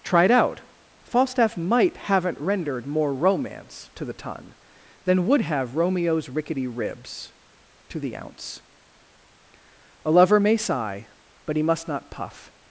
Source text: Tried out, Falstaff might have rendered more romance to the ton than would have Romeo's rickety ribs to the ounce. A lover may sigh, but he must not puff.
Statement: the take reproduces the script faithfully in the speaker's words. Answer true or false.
false